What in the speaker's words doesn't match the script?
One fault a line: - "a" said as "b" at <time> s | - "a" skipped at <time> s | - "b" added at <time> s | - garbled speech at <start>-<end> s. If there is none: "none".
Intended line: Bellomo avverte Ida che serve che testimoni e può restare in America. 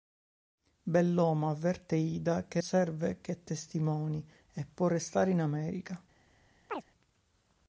none